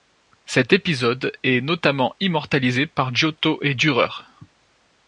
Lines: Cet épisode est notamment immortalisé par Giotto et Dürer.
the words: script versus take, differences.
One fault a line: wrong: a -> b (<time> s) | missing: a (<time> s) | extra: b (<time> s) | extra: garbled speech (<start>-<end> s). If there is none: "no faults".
no faults